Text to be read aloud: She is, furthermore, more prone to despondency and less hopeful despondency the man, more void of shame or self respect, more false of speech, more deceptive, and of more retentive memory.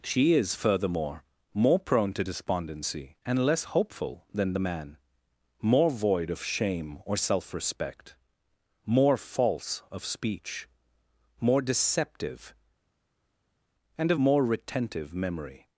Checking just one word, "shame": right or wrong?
right